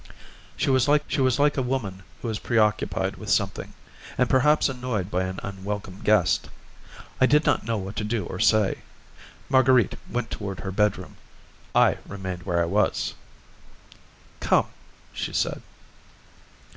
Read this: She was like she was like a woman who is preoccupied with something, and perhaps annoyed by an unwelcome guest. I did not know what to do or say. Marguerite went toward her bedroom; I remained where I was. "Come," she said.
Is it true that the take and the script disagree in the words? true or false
false